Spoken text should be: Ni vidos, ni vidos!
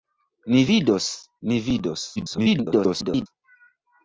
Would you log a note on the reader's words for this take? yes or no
yes